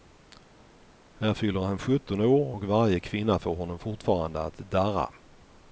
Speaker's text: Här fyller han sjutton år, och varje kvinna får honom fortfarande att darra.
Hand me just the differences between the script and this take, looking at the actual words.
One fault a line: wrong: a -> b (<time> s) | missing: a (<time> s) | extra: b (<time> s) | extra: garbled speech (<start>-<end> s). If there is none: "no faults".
no faults